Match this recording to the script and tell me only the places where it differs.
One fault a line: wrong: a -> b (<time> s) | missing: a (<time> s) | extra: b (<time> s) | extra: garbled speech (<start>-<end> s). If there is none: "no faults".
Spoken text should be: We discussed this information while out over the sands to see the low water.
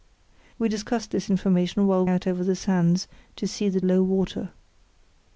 no faults